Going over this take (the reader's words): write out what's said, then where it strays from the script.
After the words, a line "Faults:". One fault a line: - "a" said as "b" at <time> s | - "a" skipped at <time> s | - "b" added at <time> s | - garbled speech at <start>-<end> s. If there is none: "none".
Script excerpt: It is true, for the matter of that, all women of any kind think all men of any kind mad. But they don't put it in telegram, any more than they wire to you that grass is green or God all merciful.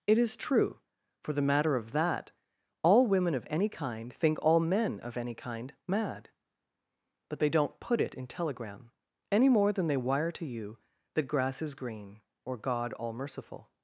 It is true, for the matter of that, all women of any kind think all men of any kind mad. But they don't put it in telegram, any more than they wire to you that grass is green or God all merciful.
Faults:
none